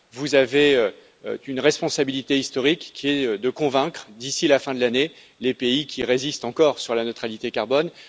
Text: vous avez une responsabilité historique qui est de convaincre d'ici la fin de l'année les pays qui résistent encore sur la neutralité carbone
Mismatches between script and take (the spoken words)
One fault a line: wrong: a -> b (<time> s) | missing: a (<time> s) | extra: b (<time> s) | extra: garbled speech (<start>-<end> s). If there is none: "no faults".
no faults